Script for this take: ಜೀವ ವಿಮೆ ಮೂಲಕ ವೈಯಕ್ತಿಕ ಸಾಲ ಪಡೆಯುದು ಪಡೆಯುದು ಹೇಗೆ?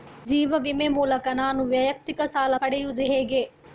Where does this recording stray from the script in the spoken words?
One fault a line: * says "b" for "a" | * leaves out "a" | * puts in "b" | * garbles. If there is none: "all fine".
* puts in "ನಾನು"
* leaves out "ಪಡೆಯುದು"